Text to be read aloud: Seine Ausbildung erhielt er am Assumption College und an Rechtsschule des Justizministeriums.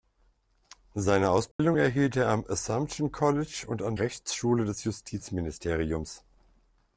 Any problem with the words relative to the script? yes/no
no